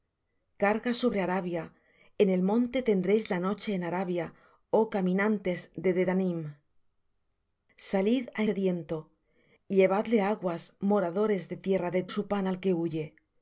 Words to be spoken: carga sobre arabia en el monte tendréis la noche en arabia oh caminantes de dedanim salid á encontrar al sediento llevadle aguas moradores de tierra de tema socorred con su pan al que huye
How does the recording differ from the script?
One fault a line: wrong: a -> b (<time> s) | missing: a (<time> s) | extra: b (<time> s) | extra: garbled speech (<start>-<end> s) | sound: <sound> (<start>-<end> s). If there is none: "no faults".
missing: encontrar al (8.4 s)
missing: tema socorred con (12.0 s)